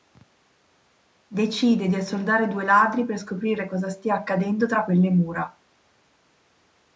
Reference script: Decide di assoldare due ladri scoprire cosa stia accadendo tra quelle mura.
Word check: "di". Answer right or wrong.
right